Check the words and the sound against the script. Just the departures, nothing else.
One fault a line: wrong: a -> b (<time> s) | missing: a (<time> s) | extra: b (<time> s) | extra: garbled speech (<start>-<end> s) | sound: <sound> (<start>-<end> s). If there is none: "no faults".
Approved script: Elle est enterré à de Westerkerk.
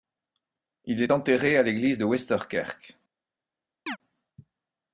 wrong: Elle -> Il (0.8 s)
extra: l'église (1.6 s)
sound: chirp (3.9-4.0 s)